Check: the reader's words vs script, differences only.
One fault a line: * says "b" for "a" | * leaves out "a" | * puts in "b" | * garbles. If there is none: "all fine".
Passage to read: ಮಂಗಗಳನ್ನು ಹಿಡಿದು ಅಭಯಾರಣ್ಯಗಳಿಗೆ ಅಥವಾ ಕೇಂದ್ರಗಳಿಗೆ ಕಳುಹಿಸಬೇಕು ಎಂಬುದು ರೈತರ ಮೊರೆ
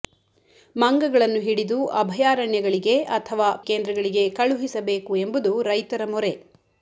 all fine